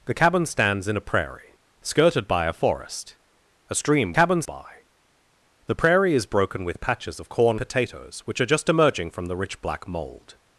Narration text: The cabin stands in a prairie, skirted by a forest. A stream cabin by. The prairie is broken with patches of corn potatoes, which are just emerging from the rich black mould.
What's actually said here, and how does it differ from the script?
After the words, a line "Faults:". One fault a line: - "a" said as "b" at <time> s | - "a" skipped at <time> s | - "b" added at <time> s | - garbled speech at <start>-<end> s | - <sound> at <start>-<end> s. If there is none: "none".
The cabin stands in a prairie, skirted by a forest. A stream cabin by. The prairie is broken with patches of corn potatoes, which are just emerging from the rich black mould.
Faults:
none